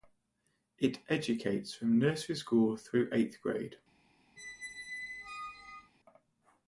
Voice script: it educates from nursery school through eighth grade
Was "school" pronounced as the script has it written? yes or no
yes